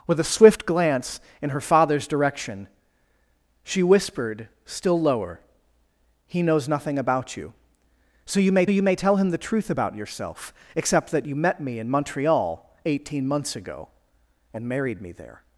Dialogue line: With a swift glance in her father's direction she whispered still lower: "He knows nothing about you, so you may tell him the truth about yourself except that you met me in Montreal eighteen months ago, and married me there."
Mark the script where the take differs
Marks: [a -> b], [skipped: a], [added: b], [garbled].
With a swift glance in her father's direction she whispered still lower: "He knows nothing about you, so you may [added: you may] tell him the truth about yourself except that you met me in Montreal eighteen months ago, and married me there."